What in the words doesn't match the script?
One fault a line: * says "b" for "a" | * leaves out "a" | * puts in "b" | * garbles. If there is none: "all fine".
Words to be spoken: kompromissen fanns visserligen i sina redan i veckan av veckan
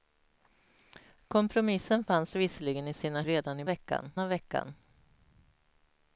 all fine